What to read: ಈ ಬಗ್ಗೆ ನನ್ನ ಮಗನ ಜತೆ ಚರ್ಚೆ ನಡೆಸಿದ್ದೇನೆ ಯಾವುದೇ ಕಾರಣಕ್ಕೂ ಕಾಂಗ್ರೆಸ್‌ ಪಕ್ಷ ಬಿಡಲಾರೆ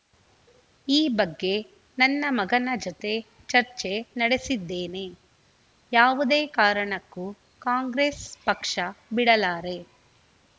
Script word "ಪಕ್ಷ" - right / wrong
right